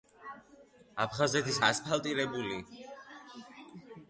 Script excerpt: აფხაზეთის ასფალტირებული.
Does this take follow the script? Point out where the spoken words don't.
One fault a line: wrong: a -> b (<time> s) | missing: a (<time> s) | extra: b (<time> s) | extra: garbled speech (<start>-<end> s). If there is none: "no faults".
no faults